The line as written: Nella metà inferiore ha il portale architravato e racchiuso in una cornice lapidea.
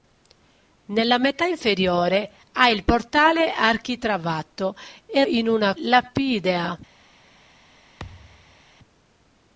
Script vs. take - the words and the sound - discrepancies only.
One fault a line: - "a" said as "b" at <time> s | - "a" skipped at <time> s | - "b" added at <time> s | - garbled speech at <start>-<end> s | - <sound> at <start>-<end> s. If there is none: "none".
- "racchiuso" skipped at 5.2 s
- "cornice" skipped at 5.8 s
- thud at 8.0-8.6 s